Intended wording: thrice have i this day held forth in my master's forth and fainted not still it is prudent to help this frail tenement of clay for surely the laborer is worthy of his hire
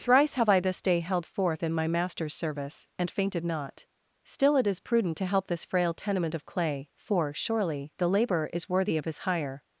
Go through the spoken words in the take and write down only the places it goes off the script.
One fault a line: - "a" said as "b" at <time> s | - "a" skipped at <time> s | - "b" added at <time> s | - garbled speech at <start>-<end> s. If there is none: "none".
- "forth" said as "service" at 2.3 s